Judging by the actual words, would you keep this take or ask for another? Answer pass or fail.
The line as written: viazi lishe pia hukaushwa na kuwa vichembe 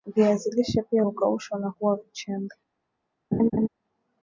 pass